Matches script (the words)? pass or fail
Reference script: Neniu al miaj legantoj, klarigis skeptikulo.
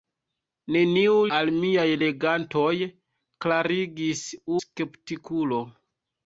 pass